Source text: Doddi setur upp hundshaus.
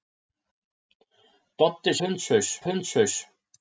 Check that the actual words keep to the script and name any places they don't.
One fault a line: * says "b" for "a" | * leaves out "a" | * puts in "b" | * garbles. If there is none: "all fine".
* says "hundshaus" for "setur"